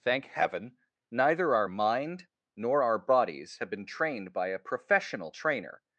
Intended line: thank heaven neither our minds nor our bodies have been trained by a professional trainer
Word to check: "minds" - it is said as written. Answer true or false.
false